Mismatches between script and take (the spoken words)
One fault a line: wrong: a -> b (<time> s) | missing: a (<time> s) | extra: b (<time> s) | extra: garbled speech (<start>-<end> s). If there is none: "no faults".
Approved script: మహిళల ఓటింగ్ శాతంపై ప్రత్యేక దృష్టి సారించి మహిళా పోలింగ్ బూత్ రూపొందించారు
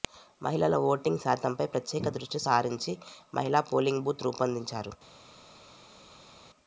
no faults